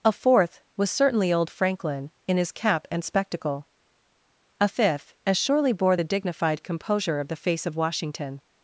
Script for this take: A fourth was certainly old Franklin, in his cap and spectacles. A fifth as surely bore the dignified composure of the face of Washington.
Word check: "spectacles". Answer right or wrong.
wrong